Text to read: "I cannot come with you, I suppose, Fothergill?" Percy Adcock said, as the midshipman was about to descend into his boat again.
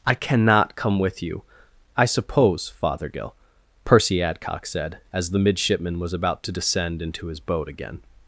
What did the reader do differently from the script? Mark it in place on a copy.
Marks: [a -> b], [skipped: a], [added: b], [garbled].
"I cannot come with you, I suppose, Fothergill?" Percy Adcock said, as the midshipman was about to descend into his boat again.